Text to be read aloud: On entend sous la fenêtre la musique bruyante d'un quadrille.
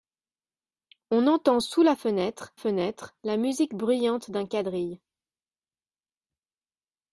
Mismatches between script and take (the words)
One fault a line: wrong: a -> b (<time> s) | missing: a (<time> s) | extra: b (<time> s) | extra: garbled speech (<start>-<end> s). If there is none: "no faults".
extra: fenêtre (2.5 s)